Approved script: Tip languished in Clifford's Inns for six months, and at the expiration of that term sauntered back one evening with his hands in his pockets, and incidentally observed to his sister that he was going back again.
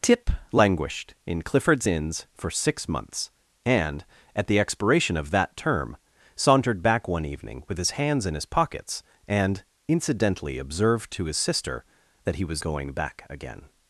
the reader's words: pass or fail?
pass